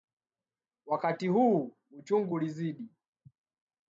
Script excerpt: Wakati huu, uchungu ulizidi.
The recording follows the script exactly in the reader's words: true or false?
true